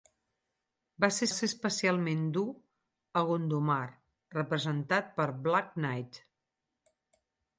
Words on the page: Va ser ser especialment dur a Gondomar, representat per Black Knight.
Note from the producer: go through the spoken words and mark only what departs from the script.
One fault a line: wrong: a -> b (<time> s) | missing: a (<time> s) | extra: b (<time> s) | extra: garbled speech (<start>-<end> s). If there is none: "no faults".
no faults